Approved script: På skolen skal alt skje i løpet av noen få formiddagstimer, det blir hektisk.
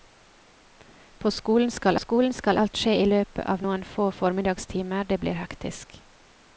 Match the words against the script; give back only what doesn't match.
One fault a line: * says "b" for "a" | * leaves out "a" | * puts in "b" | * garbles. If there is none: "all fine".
* puts in "skolen skal"